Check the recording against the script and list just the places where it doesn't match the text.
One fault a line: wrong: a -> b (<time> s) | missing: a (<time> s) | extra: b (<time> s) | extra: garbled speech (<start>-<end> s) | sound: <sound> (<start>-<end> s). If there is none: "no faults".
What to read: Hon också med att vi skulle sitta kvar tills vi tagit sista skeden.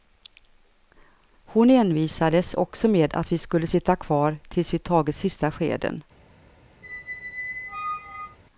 extra: envisades (1.7 s)
sound: squeak (6.8-8.4 s)